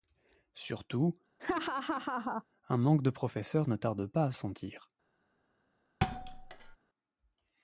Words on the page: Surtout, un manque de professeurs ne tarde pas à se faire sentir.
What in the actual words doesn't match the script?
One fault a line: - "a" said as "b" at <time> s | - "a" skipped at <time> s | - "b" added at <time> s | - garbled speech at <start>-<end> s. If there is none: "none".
- "se faire" skipped at 4.3 s